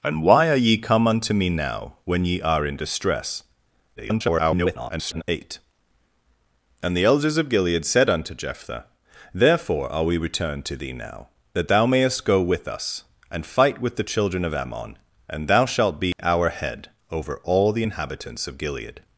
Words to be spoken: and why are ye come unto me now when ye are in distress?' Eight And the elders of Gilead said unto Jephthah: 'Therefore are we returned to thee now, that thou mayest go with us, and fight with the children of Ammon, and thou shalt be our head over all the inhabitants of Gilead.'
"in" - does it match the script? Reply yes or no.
yes